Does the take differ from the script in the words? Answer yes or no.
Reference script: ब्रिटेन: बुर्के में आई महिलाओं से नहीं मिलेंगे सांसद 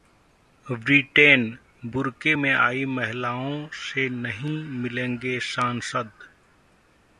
no